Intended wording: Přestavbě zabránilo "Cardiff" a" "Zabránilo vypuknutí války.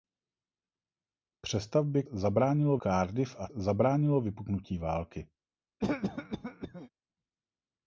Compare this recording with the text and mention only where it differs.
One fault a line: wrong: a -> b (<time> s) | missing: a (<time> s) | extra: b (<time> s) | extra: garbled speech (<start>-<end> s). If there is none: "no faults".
no faults